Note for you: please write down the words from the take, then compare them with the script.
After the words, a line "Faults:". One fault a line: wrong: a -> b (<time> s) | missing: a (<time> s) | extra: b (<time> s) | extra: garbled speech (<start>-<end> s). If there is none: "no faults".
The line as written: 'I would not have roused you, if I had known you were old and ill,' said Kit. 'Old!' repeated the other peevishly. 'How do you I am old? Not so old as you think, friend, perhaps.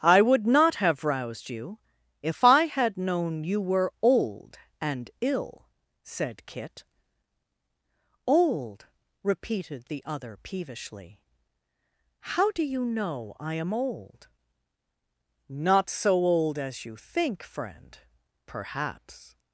'I would not have roused you, if I had known you were old and ill,' said Kit. 'Old!' repeated the other peevishly. 'How do you know I am old? Not so old as you think, friend, perhaps.
Faults:
extra: know (12.9 s)